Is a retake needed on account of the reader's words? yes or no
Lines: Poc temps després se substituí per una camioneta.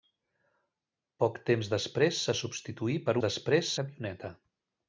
yes